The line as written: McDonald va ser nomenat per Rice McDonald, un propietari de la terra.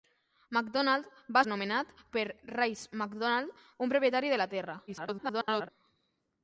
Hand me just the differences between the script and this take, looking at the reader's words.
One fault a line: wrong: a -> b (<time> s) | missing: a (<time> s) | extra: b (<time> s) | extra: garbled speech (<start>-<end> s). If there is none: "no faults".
missing: ser (1.4 s)
extra: garbled speech (4.9-5.7 s)